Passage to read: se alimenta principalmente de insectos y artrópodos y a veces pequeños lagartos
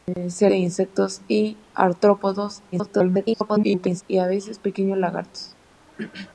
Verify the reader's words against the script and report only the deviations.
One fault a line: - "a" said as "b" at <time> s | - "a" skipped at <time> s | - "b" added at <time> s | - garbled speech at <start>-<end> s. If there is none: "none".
- "alimenta principalmente" skipped at 0.5 s
- garbled speech at 2.7-4.0 s